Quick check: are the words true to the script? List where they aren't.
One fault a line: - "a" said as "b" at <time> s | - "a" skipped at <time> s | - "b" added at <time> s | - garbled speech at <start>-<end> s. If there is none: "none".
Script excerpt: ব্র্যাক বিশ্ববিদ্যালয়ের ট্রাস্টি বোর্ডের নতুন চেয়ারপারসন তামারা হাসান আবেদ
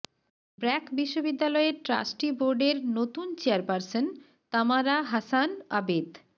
none